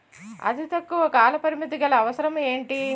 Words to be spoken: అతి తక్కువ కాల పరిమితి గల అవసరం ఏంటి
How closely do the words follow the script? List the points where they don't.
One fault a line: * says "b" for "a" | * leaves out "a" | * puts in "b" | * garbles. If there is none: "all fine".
all fine